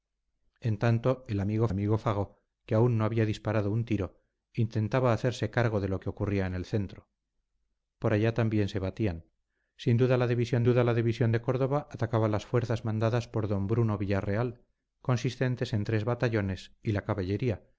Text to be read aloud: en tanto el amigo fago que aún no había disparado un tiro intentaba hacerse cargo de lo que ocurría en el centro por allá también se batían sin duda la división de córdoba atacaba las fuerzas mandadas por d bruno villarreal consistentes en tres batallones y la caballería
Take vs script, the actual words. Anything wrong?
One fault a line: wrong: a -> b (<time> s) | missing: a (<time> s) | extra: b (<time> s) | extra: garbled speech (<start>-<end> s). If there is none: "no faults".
extra: amigo (1.7 s)
extra: duda la división (10.6 s)